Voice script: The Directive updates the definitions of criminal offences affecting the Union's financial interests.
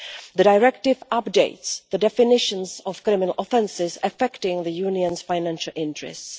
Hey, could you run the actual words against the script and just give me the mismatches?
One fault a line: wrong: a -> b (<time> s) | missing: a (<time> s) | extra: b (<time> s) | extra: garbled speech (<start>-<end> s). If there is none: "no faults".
no faults